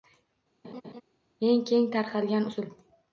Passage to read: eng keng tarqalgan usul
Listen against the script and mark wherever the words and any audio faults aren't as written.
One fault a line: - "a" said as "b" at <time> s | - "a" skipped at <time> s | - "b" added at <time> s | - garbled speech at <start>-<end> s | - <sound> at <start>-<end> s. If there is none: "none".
- laugh at 0.6-1.0 s